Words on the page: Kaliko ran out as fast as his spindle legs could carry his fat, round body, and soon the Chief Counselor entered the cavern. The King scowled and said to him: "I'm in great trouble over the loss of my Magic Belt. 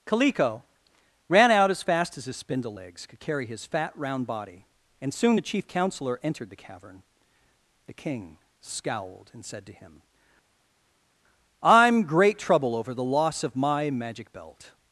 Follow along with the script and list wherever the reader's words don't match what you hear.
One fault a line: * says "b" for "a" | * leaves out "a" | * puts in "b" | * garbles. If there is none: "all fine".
* leaves out "in"